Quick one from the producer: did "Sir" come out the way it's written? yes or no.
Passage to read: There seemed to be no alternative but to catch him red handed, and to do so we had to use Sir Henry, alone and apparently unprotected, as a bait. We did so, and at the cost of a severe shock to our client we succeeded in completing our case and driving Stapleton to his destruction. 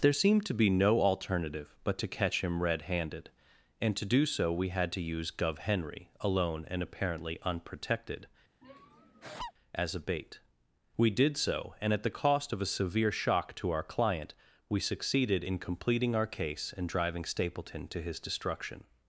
no